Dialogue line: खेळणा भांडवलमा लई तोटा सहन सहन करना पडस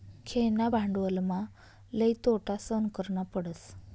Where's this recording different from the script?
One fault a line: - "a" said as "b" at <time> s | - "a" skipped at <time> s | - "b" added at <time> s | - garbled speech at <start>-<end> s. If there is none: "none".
- "सहन" skipped at 2.9 s